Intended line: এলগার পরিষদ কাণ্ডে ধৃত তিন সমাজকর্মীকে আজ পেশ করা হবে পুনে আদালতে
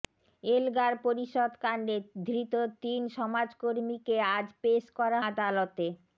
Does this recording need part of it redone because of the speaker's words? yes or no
yes